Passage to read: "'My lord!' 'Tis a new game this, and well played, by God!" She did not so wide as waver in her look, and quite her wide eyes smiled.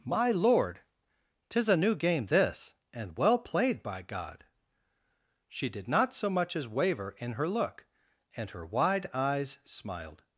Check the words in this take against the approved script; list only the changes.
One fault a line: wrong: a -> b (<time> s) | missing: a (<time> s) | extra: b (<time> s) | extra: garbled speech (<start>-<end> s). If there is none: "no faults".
wrong: wide -> much (6.3 s)
missing: quite (8.5 s)